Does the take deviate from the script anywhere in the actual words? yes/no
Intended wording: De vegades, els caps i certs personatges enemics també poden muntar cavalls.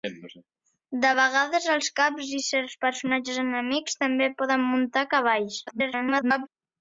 yes